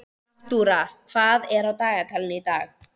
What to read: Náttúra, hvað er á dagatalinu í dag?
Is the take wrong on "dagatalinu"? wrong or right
right